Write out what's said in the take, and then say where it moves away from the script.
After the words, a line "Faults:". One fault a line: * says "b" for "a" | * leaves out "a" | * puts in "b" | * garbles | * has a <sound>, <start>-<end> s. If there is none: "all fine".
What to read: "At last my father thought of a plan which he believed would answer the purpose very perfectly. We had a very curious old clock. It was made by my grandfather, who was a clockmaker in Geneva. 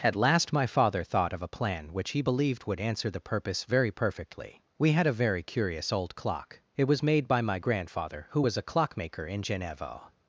"At last my father thought of a plan which he believed would answer the purpose very perfectly. We had a very curious old clock. It was made by my grandfather, who was a clockmaker in Geneva.
Faults:
all fine